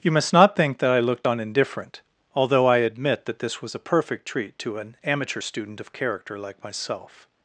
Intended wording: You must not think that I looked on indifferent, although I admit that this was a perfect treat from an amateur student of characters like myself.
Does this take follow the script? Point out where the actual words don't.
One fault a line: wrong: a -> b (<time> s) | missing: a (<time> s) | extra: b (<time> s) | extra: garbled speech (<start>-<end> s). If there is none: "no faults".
wrong: from -> to (4.6 s)
wrong: characters -> character (5.9 s)